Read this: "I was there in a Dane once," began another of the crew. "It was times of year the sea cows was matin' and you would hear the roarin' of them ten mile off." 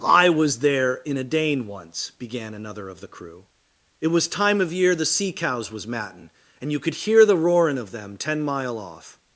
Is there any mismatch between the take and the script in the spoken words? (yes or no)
yes